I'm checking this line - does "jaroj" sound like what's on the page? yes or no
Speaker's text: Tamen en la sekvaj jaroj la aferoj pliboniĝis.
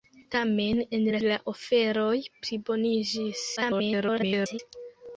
no